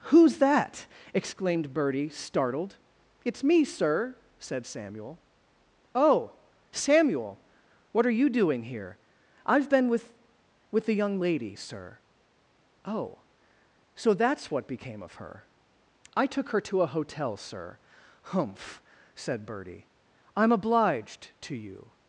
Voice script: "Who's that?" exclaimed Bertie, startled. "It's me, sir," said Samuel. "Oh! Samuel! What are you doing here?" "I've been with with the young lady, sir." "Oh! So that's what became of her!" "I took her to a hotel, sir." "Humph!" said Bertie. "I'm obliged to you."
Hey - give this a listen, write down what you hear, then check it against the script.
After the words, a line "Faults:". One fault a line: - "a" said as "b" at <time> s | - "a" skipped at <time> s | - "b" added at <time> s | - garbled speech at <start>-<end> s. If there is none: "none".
"Who's that?" exclaimed Bertie, startled. "It's me, sir," said Samuel. "Oh! Samuel! What are you doing here?" "I've been with with the young lady, sir." "Oh! So that's what became of her!" "I took her to a hotel, sir." "Humph!" said Bertie. "I'm obliged to you."
Faults:
none